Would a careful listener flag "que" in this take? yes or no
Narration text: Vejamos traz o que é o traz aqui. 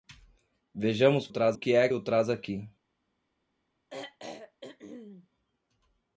no